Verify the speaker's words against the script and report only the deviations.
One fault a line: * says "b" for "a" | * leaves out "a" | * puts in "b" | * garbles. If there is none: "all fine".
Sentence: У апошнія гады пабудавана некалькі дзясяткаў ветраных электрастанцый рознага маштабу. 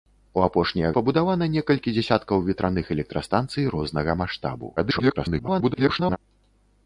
* leaves out "гады"
* garbles